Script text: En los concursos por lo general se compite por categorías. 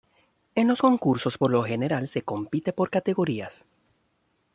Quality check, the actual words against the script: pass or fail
pass